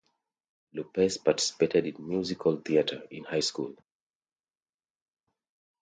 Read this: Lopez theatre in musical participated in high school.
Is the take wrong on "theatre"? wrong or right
wrong